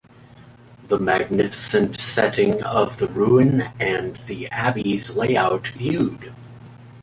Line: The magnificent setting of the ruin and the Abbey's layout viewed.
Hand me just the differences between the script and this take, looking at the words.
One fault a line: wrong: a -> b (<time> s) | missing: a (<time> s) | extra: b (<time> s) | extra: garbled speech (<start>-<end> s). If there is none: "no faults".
no faults